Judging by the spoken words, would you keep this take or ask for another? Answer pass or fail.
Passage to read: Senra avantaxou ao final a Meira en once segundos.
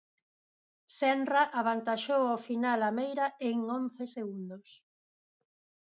pass